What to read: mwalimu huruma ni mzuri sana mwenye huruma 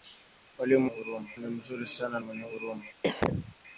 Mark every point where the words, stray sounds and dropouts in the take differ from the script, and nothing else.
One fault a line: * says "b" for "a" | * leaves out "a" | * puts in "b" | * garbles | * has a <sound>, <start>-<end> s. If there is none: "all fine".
* has a cough, 3.0-3.6 s